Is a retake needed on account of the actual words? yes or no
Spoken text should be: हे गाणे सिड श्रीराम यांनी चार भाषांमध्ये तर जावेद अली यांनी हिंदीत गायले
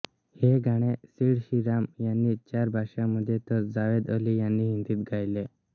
no